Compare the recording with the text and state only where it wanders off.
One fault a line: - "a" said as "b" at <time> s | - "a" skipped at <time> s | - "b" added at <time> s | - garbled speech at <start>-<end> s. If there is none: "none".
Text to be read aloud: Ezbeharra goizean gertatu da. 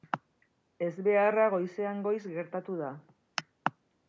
- "goiz" added at 2.1 s